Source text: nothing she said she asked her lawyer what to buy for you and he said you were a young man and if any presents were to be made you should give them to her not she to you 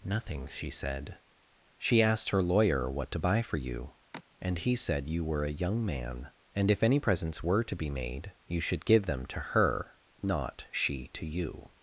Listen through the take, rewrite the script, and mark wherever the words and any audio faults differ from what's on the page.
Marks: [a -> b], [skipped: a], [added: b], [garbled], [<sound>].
nothing she said she asked her lawyer what to buy for you [sigh] and he said you were a young man and if any presents were to be made you should give them to her not she to you